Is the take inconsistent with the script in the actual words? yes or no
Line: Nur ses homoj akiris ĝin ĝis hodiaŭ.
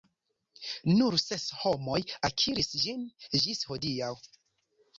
no